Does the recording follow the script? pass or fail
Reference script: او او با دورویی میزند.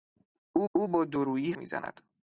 pass